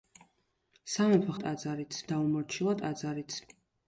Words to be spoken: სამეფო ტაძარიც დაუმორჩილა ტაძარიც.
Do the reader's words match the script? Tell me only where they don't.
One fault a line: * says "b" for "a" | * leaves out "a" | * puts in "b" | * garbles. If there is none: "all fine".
all fine